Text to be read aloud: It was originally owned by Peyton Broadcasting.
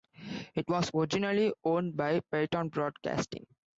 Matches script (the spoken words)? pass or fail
pass